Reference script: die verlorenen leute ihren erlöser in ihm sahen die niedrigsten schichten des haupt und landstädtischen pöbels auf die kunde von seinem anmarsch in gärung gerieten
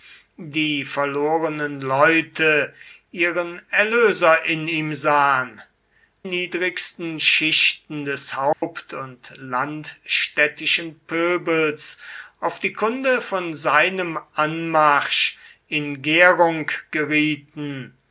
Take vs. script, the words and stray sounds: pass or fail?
fail